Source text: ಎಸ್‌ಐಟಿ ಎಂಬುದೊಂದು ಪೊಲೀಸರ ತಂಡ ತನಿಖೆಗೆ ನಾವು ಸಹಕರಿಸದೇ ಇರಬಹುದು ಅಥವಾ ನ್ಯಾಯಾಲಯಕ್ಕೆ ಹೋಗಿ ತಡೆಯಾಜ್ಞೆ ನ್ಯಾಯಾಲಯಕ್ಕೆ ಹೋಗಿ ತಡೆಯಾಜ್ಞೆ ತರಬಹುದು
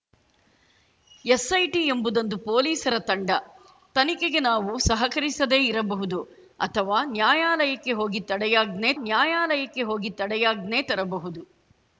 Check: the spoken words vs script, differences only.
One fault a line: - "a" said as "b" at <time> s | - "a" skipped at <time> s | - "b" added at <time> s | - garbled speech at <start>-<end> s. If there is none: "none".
none